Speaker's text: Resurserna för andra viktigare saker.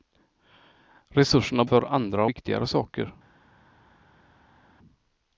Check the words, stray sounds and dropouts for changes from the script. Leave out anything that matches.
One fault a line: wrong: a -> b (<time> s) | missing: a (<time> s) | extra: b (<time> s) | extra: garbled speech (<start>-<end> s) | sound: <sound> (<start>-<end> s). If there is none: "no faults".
no faults